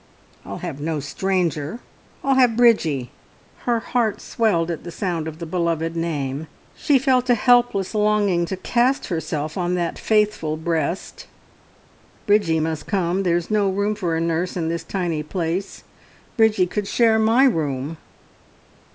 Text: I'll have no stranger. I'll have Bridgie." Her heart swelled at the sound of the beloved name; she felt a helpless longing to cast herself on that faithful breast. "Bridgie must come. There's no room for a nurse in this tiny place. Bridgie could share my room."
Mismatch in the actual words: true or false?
false